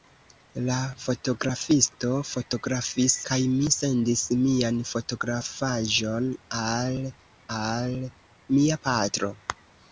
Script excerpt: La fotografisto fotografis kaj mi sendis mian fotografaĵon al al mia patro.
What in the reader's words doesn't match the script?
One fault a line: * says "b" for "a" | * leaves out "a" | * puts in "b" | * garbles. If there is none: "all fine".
all fine